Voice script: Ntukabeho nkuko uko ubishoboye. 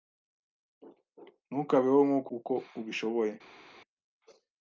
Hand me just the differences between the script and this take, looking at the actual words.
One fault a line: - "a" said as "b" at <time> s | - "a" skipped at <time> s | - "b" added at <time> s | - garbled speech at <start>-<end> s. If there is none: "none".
none